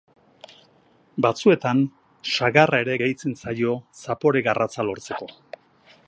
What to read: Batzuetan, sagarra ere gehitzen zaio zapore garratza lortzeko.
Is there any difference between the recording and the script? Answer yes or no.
no